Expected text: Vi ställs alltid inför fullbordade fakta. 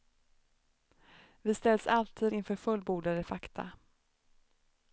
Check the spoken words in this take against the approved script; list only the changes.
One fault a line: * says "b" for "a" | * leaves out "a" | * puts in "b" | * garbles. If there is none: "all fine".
all fine